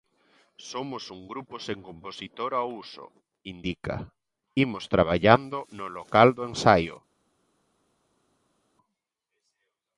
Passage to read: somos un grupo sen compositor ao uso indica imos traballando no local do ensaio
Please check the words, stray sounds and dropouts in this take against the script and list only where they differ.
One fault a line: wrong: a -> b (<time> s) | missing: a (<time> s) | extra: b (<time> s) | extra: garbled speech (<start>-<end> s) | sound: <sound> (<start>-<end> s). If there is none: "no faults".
no faults